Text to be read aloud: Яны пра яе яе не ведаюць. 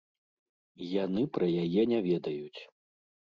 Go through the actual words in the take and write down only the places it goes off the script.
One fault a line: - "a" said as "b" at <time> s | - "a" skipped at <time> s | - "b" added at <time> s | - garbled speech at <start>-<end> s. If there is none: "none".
- "яе" skipped at 1.8 s